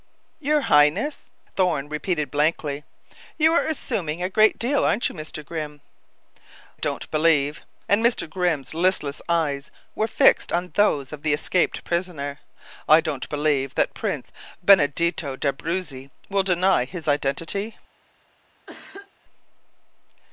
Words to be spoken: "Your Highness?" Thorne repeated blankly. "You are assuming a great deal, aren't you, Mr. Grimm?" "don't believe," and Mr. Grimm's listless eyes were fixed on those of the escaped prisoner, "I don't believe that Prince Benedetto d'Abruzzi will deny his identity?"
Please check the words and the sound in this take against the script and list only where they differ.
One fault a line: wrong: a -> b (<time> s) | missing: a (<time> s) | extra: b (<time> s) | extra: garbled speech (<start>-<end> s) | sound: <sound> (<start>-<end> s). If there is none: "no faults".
sound: cough (18.7-19.1 s)